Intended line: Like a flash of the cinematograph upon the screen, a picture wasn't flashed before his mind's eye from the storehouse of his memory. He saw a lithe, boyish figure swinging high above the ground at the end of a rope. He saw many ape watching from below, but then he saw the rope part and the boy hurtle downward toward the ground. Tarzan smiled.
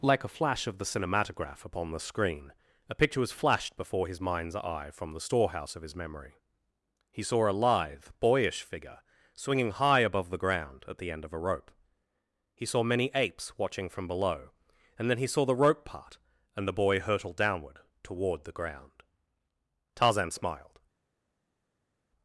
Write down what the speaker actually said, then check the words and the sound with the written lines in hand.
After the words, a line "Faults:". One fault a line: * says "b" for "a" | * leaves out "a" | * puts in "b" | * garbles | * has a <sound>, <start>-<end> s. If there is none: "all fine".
Like a flash of the cinematograph upon the screen, a picture was flashed before his mind's eye from the storehouse of his memory. He saw a lithe, boyish figure swinging high above the ground at the end of a rope. He saw many apes watching from below, and then he saw the rope part and the boy hurtle downward toward the ground. Tarzan smiled.
Faults:
* says "was" for "wasn't"
* says "apes" for "ape"
* says "and" for "but"